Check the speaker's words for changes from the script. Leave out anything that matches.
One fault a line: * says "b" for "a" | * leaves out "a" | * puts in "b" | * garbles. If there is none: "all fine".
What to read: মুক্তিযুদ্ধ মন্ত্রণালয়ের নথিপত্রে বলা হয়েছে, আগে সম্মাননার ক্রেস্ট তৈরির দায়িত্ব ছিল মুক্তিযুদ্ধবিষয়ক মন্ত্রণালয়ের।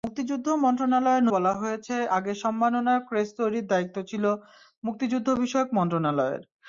* leaves out "নথিপত্রে"